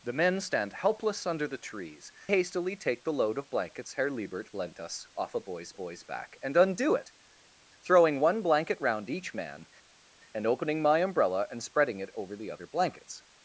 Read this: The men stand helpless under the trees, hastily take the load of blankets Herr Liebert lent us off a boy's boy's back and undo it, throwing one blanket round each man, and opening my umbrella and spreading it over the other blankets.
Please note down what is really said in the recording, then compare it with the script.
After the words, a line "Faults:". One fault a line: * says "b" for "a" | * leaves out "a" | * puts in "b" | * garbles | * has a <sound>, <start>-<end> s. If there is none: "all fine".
The men stand helpless under the trees, hastily take the load of blankets Herr Liebert lent us off a boy's boy's back and undo it, throwing one blanket round each man, and opening my umbrella and spreading it over the other blankets.
Faults:
all fine